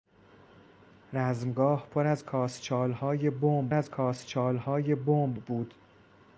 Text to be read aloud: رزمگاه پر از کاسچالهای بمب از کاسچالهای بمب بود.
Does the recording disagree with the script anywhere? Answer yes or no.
no